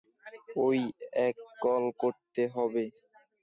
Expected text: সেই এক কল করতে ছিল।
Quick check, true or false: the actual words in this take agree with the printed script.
false